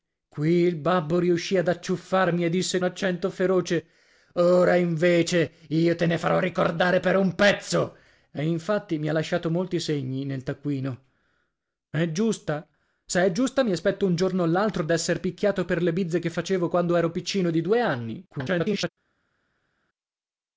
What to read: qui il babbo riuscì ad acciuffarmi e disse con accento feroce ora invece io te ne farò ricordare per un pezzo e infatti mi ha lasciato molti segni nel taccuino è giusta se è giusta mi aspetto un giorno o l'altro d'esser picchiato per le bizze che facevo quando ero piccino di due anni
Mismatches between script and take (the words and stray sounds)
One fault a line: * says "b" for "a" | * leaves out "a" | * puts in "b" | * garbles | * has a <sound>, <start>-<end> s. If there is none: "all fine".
* leaves out "con"
* garbles